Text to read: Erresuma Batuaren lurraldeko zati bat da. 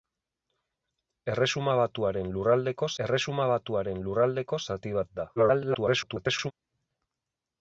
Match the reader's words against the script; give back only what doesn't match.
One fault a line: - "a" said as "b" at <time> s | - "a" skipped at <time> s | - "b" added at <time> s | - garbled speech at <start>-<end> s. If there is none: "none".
- "erresuma Batuaren lurraldeko" added at 3.0 s
- garbled speech at 5.4-6.5 s